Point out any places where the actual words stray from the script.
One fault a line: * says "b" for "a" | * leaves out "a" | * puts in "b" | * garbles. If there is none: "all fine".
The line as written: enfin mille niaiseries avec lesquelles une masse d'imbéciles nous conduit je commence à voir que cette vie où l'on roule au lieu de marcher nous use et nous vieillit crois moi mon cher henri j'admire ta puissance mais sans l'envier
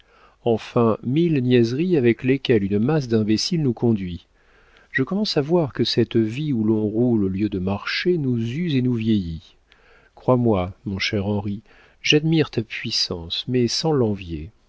all fine